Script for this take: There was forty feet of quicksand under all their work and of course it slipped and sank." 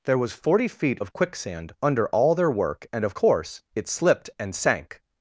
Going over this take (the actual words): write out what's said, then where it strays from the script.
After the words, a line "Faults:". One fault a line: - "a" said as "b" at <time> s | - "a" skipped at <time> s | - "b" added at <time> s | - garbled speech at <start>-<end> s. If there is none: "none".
There was forty feet of quicksand under all their work and of course it slipped and sank."
Faults:
none